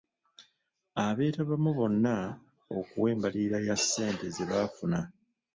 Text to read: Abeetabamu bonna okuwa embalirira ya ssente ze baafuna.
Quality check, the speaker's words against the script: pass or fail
pass